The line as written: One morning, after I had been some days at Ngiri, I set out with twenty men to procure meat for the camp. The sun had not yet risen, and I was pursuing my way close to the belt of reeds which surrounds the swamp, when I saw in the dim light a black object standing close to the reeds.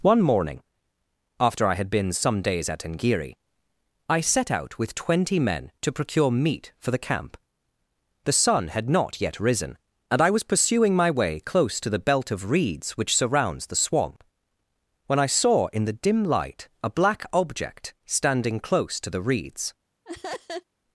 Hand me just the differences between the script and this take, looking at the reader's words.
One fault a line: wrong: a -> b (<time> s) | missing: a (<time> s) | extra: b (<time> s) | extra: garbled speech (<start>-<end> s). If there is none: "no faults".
no faults